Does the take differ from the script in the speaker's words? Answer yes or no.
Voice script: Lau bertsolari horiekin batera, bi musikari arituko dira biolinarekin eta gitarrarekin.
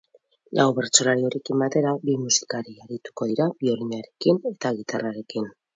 no